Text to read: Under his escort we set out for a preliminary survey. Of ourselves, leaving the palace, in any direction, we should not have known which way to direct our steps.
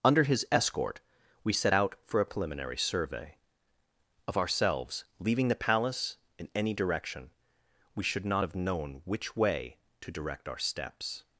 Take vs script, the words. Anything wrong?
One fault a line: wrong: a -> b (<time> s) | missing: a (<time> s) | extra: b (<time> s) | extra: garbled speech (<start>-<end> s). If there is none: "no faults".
no faults